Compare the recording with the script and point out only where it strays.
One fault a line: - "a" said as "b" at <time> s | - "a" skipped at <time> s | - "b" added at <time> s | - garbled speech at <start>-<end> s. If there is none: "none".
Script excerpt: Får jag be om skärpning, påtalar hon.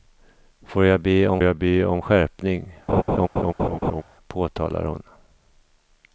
- "jag be om" added at 1.4 s